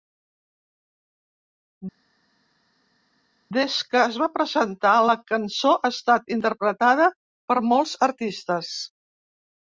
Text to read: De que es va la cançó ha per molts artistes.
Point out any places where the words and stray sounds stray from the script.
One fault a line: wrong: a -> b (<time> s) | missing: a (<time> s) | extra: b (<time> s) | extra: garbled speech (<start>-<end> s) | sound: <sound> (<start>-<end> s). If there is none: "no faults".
wrong: De -> Des (3.6 s)
extra: presentar (4.3 s)
extra: estat interpretada (6.0 s)